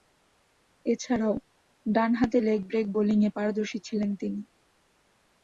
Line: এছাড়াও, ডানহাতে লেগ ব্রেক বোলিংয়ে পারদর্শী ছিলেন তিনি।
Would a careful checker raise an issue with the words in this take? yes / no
no